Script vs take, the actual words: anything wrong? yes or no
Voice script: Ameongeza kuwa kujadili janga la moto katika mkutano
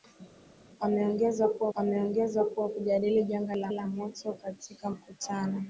yes